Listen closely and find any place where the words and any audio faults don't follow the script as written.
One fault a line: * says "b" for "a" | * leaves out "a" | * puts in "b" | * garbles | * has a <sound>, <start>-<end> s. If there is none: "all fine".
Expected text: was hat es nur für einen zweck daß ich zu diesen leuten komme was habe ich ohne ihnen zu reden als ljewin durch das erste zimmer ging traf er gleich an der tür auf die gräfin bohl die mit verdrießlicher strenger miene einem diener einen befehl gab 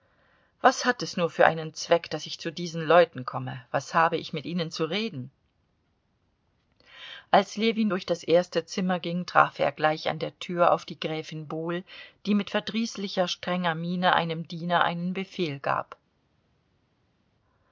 * says "mit" for "ohne"